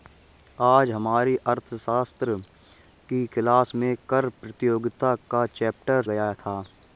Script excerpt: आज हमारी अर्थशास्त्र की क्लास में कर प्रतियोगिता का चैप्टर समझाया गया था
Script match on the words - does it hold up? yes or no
no